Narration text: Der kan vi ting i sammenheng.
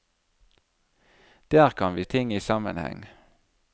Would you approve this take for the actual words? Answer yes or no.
yes